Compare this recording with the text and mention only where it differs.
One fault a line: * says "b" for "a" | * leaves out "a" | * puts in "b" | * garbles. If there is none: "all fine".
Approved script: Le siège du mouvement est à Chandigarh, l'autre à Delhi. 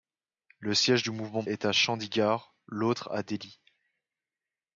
all fine